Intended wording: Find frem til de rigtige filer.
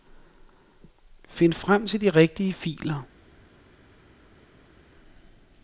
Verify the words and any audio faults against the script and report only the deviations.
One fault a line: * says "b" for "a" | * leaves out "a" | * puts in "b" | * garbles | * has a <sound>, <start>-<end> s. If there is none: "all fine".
all fine